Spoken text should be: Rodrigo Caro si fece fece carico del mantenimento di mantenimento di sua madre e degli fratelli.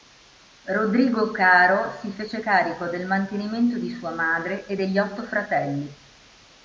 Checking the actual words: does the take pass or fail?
fail